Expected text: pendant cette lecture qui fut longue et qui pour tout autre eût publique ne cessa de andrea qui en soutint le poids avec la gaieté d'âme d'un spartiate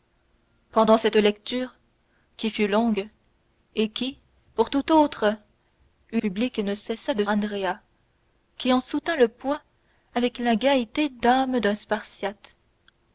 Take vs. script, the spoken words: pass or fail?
pass